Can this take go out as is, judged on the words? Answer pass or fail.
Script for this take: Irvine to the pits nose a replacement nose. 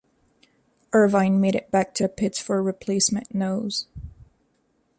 fail